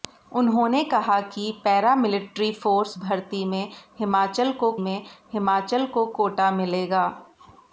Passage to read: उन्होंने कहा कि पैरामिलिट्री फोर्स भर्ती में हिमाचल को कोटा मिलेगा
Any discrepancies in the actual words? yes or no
yes